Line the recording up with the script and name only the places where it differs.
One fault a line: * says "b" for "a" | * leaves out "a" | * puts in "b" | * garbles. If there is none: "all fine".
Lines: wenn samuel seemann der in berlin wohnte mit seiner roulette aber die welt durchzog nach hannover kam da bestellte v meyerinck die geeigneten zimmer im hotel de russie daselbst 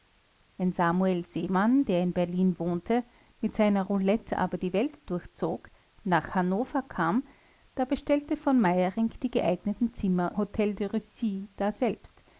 * leaves out "im"